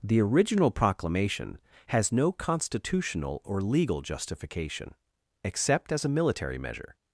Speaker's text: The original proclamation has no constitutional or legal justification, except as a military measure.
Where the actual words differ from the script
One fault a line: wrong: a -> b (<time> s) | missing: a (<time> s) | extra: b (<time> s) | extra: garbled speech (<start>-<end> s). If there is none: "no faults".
no faults